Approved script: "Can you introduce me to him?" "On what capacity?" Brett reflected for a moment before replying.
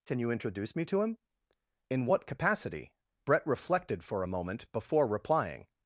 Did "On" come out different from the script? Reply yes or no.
yes